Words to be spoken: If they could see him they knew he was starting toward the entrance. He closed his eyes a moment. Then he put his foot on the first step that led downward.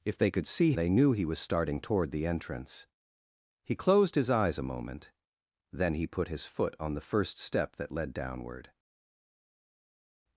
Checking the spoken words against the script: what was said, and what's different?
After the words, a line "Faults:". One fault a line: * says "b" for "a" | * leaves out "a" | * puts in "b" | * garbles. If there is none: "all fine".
If they could see they knew he was starting toward the entrance. He closed his eyes a moment. Then he put his foot on the first step that led downward.
Faults:
* leaves out "him"